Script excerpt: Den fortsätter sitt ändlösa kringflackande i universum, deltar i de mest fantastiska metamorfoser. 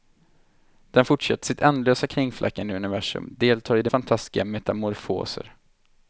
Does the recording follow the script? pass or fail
fail